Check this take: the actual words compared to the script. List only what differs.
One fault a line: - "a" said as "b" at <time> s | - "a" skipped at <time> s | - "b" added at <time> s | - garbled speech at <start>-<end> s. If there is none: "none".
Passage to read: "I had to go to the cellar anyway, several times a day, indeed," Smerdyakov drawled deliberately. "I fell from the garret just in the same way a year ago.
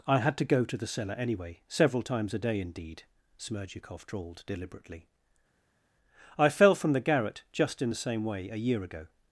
none